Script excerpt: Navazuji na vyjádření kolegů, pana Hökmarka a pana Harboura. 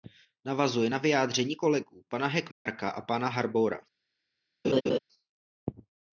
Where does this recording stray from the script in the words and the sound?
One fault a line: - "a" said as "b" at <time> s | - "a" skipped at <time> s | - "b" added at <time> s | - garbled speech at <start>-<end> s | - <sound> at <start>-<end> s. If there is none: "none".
- dropout at 2.5-2.7 s
- laugh at 4.6-5.0 s